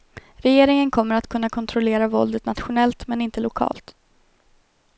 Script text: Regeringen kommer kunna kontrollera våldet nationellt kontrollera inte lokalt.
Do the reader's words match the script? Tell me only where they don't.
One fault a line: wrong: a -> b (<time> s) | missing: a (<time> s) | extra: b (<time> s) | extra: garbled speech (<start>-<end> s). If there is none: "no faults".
extra: att (1.1 s)
wrong: kontrollera -> men (3.1 s)